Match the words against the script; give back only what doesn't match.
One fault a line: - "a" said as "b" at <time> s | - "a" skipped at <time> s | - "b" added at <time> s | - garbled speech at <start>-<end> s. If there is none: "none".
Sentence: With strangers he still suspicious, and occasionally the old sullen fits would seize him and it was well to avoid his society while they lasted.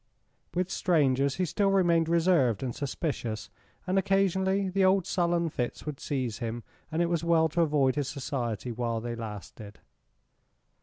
- "remained reserved and" added at 1.7 s